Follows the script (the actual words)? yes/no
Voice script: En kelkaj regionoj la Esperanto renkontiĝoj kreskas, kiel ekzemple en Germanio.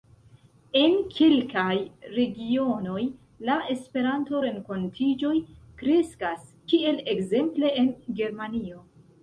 yes